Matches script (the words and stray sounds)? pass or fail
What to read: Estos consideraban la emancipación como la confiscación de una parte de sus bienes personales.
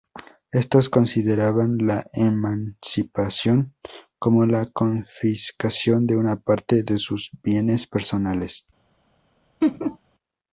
fail